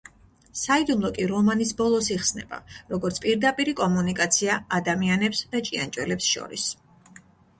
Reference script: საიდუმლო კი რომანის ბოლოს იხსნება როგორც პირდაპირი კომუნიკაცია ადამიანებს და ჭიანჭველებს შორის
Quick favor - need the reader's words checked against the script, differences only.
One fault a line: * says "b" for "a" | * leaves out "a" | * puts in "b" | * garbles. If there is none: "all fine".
all fine